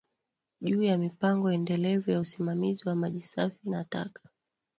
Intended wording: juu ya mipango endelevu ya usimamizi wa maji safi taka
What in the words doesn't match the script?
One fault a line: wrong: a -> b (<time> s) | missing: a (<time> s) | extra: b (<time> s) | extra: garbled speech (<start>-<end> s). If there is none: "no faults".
extra: na (3.7 s)